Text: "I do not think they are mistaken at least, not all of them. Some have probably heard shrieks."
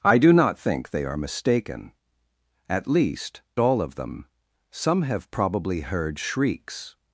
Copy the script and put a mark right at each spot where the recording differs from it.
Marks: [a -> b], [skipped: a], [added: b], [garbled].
"I do not think they are mistaken at least, [skipped: not] all of them. Some have probably heard shrieks."